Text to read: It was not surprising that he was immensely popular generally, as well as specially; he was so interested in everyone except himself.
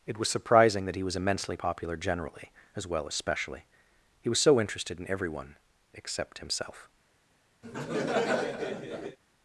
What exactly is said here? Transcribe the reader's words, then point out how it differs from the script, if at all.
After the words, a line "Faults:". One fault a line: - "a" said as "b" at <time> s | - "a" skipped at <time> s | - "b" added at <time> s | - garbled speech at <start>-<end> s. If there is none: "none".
It was surprising that he was immensely popular generally, as well as specially; he was so interested in everyone except himself.
Faults:
- "not" skipped at 0.3 s